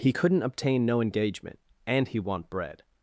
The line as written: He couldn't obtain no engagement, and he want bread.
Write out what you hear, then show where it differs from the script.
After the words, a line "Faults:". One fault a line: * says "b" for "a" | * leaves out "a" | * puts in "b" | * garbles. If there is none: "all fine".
He couldn't obtain no engagement, and he want bread.
Faults:
all fine